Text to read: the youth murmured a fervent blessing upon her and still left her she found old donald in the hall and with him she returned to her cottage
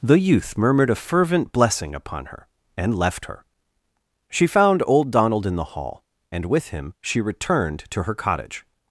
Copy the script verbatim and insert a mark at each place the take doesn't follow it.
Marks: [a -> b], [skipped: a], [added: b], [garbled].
the youth murmured a fervent blessing upon her and [skipped: still] left her she found old donald in the hall and with him she returned to her cottage